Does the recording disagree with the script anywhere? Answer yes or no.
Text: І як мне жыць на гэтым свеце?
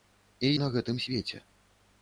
yes